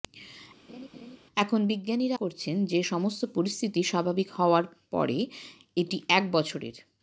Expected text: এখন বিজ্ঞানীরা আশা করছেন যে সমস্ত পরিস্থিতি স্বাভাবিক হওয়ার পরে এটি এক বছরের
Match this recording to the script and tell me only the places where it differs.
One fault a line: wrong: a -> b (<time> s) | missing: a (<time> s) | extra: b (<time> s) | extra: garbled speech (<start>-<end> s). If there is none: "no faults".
missing: আশা (2.2 s)